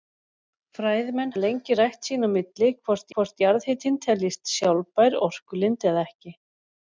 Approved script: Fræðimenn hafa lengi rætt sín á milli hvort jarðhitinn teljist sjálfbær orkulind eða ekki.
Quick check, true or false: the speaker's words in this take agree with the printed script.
false